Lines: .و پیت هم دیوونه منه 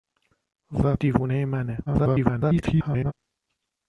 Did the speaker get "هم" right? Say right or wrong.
wrong